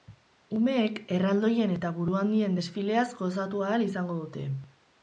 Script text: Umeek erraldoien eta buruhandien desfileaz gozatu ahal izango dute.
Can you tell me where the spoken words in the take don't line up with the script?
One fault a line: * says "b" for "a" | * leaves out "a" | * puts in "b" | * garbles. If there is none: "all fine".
all fine